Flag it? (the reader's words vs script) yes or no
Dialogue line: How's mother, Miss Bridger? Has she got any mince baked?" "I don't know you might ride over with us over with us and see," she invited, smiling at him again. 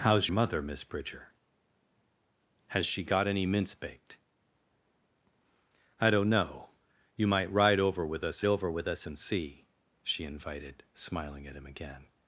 no